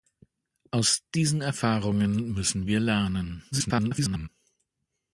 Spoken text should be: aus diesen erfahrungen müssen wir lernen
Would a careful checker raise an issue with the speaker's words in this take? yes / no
yes